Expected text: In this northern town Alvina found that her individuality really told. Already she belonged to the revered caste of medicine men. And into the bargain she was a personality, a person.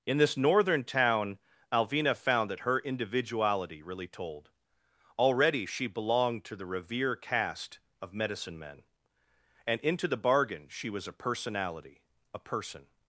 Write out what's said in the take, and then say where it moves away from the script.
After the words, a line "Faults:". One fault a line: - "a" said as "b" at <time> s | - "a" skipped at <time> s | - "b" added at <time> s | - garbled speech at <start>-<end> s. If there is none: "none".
In this northern town Alvina found that her individuality really told. Already she belonged to the revere caste of medicine men. And into the bargain she was a personality, a person.
Faults:
- "revered" said as "revere" at 6.7 s